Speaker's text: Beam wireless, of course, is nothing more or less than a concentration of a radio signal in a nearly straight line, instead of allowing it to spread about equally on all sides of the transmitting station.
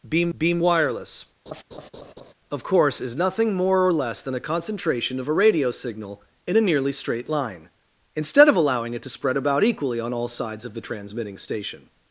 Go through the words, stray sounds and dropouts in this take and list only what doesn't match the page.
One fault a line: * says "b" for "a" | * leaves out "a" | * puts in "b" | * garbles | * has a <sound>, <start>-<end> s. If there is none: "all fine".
* puts in "beam"
* has a laugh, 1.5-2.3 s